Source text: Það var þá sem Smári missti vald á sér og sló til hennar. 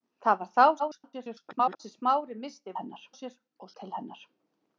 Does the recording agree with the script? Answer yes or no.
no